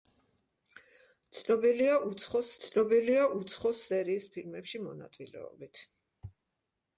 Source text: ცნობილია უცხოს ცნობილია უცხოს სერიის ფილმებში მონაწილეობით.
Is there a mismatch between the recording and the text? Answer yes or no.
no